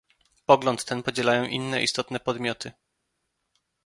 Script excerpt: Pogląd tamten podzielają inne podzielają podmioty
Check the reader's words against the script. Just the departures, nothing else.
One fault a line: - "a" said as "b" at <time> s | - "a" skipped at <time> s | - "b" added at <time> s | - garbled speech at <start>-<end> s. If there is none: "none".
- "tamten" said as "ten" at 0.8 s
- "podzielają" said as "istotne" at 1.8 s